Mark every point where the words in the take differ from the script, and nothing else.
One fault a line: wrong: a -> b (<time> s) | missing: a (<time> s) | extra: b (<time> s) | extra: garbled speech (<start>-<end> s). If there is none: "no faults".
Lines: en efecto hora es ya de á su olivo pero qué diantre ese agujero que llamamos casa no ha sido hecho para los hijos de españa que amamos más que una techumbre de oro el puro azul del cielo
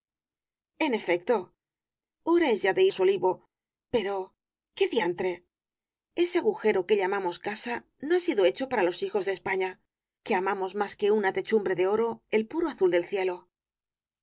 no faults